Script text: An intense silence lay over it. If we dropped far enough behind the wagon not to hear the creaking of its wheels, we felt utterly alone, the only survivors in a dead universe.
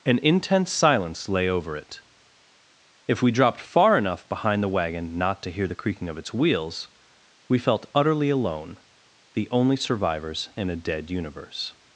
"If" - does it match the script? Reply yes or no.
yes